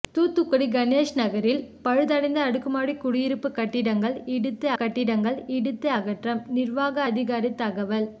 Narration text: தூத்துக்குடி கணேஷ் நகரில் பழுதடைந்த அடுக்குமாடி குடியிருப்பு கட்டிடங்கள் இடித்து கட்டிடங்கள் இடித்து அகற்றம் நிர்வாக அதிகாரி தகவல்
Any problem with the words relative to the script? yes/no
no